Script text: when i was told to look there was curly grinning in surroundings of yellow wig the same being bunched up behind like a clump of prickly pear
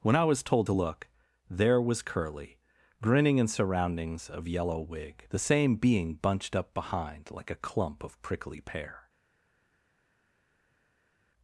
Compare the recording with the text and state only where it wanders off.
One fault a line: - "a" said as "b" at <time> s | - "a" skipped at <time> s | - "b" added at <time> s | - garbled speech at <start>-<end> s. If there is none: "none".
none